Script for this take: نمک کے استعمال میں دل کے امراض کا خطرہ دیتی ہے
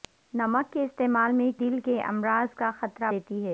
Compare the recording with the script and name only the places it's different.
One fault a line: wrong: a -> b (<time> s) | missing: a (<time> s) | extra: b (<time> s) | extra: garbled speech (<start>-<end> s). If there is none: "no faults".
no faults